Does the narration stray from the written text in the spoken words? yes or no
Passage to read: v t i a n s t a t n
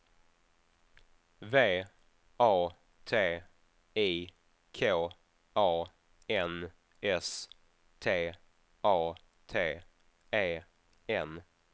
yes